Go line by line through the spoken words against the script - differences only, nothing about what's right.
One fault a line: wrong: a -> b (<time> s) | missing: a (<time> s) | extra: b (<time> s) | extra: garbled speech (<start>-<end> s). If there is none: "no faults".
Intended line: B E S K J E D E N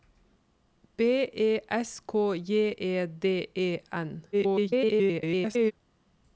extra: garbled speech (4.3-5.7 s)